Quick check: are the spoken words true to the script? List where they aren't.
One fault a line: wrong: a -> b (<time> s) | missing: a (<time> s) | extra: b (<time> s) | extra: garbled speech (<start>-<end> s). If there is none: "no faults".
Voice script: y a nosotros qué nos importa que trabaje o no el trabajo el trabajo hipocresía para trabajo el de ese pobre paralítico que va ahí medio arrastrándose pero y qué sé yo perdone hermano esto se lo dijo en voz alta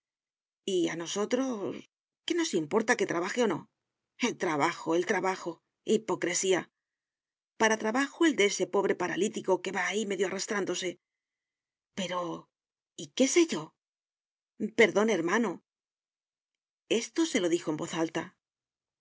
no faults